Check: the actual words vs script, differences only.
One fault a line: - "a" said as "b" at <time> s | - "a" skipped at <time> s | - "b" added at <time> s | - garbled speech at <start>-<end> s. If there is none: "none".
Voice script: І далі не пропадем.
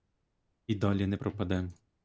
none